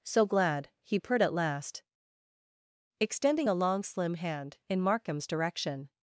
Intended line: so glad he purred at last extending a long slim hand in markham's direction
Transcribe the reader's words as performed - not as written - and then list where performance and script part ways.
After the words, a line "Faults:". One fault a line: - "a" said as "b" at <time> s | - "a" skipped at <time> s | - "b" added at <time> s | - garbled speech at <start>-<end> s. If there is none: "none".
so glad he purred at last extending a long slim hand in markham's direction
Faults:
none